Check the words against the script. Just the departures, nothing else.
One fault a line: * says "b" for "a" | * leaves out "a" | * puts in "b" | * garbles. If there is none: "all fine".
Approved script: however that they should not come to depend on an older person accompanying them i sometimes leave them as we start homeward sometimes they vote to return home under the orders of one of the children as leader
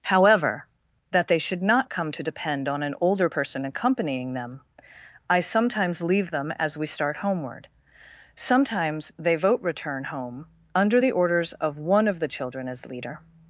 * leaves out "to"